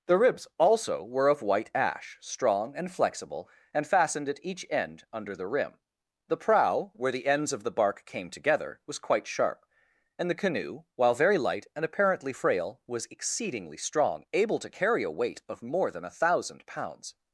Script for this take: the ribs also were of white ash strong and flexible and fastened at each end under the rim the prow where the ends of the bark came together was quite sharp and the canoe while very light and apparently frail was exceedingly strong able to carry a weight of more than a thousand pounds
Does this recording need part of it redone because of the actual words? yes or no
no